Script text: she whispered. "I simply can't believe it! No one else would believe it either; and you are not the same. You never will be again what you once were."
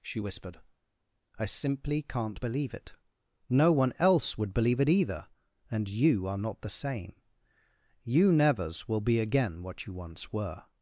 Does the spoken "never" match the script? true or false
false